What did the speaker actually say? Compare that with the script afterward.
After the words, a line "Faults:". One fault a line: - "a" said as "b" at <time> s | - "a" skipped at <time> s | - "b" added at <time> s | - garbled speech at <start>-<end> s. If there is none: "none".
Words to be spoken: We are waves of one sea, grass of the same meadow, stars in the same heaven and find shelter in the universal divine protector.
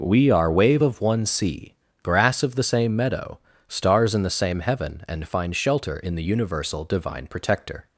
We are wave of one sea, grass of the same meadow, stars in the same heaven and find shelter in the universal divine protector.
Faults:
- "waves" said as "wave" at 0.5 s